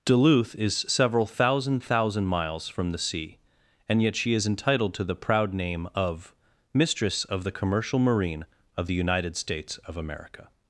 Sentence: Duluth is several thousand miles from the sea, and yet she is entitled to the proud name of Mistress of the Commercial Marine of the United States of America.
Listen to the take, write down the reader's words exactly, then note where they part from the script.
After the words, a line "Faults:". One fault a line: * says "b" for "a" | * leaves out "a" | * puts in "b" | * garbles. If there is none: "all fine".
Duluth is several thousand thousand miles from the sea, and yet she is entitled to the proud name of Mistress of the Commercial Marine of the United States of America.
Faults:
* puts in "thousand"